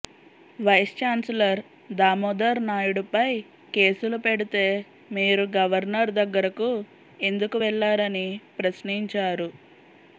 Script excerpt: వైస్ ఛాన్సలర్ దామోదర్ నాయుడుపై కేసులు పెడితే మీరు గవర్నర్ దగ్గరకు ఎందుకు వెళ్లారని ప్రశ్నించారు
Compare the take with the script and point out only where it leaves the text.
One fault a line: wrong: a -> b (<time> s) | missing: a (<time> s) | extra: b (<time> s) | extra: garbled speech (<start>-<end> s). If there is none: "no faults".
no faults